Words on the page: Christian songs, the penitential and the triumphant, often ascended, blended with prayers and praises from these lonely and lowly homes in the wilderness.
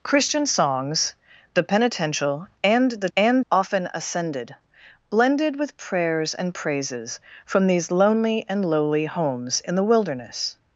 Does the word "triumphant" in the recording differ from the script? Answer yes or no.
yes